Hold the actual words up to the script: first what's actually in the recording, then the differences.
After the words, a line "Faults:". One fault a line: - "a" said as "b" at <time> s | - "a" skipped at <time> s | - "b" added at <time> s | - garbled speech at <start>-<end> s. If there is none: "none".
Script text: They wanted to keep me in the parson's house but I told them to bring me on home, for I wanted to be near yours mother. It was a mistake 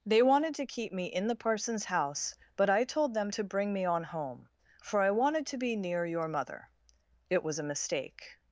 They wanted to keep me in the parson's house but I told them to bring me on home, for I wanted to be near your mother. It was a mistake
Faults:
- "yours" said as "your" at 6.1 s